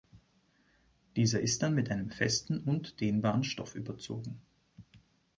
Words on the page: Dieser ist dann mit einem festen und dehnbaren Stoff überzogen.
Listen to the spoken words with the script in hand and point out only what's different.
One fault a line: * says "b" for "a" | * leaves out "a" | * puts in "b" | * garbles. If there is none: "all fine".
all fine